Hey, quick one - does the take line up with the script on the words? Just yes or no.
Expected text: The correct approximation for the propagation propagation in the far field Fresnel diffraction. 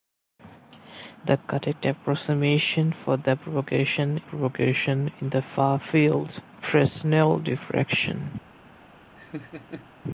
yes